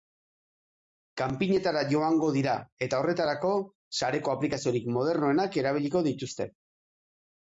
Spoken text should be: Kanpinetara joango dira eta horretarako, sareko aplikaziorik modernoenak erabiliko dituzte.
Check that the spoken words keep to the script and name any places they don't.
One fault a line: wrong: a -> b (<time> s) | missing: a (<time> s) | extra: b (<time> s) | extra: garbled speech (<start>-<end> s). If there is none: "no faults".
no faults